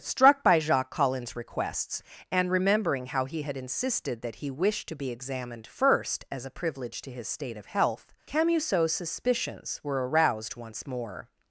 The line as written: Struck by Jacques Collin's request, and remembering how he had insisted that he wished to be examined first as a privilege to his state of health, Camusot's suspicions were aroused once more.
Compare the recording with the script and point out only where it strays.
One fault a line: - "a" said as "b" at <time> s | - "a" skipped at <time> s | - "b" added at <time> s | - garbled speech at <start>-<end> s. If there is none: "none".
- "request" said as "requests" at 1.4 s